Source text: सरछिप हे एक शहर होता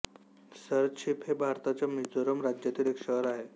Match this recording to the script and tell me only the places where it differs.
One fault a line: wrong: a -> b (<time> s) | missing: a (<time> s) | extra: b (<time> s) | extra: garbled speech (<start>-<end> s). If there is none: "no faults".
extra: भारताच्या मिझोरम राज्यातील (1.4 s)
wrong: होता -> आहे (3.3 s)